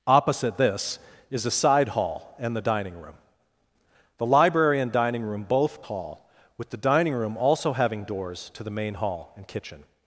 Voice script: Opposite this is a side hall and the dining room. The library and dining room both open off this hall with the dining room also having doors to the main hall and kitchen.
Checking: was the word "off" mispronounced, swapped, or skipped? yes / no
yes